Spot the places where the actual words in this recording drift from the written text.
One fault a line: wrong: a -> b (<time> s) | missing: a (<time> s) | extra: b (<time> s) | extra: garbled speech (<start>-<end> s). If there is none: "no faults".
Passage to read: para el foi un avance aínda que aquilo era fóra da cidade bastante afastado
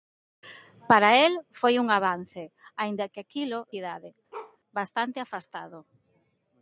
missing: era fóra da (3.6 s)